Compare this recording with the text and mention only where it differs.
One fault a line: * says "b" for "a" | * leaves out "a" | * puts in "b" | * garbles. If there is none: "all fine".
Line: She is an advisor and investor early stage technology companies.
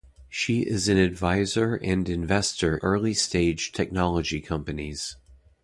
all fine